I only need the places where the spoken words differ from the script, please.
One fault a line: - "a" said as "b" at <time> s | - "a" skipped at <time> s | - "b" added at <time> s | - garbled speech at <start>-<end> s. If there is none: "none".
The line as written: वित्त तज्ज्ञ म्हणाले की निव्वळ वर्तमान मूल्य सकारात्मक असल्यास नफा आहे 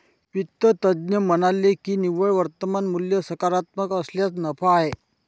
none